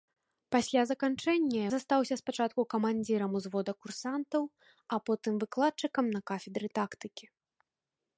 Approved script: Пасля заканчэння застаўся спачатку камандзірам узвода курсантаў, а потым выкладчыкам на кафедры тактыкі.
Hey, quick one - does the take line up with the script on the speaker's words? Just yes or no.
yes